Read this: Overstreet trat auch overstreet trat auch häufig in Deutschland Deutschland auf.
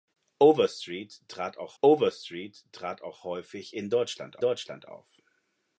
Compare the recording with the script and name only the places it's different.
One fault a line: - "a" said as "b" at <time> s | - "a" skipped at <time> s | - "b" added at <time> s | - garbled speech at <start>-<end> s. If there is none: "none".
none